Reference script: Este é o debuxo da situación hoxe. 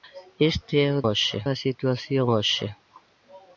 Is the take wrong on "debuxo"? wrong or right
wrong